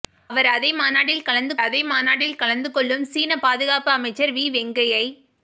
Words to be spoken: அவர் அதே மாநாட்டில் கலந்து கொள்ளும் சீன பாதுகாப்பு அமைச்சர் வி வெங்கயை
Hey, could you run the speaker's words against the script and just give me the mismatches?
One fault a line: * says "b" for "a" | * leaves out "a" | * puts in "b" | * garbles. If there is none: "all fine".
* puts in "அதே மாநாட்டில் கலந்து"